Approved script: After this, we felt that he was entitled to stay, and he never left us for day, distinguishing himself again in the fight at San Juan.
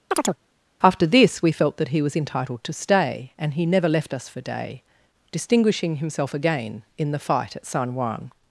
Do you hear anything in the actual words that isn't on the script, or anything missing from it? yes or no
no